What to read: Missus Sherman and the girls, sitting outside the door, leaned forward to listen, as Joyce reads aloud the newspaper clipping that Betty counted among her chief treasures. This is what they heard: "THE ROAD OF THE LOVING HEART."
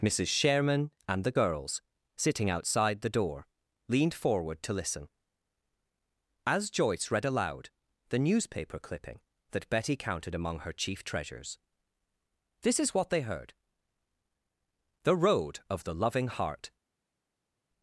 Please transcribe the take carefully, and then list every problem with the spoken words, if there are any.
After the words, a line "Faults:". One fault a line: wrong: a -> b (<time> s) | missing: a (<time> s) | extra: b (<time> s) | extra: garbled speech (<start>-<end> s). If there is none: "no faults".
Missus Sherman and the girls, sitting outside the door, leaned forward to listen, as Joyce read aloud the newspaper clipping that Betty counted among her chief treasures. This is what they heard: "THE ROAD OF THE LOVING HEART."
Faults:
wrong: reads -> read (7.1 s)